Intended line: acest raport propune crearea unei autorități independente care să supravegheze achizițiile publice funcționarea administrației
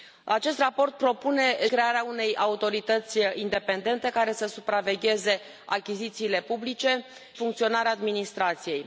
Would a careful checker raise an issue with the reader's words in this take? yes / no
no